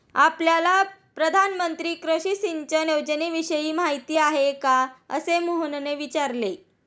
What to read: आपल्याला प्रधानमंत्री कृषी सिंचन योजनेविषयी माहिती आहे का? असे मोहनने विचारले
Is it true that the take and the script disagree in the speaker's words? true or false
false